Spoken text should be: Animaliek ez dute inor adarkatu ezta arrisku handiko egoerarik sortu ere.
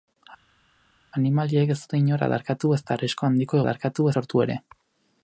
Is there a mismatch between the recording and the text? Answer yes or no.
yes